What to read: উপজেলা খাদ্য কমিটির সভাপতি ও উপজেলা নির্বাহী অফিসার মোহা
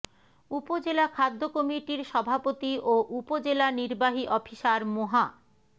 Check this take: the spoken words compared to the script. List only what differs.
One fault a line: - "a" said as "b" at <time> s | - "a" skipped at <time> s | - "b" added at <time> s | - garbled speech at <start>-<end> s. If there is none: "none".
none